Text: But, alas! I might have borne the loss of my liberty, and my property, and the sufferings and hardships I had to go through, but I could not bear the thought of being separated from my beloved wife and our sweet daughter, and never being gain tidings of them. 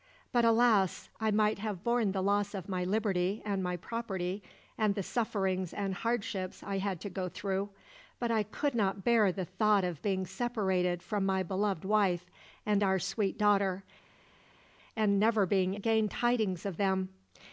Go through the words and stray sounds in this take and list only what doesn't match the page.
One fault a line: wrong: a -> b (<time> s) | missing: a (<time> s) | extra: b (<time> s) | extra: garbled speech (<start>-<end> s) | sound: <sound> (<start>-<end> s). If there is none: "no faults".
no faults